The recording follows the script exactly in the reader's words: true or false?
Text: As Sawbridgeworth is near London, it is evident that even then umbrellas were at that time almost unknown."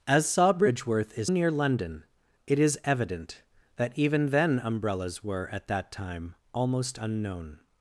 true